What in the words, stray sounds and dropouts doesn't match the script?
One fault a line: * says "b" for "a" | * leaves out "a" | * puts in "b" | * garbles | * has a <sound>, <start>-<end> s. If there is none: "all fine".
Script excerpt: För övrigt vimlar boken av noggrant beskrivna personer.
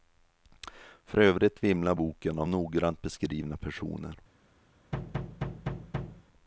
* has a thud, 4.9-6.2 s